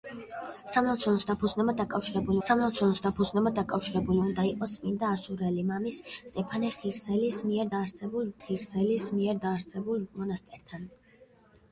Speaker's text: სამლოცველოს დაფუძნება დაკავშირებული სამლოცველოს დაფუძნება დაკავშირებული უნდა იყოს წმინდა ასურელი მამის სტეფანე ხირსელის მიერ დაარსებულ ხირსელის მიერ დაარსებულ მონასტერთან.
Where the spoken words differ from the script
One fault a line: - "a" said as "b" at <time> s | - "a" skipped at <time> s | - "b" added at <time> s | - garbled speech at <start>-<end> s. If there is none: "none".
none